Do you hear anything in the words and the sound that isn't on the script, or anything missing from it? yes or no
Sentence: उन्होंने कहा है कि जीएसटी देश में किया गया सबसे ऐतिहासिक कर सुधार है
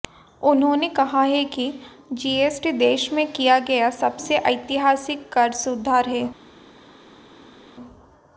no